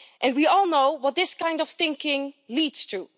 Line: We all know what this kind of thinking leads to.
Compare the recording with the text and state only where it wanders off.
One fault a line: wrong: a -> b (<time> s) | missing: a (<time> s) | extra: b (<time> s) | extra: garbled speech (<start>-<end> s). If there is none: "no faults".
no faults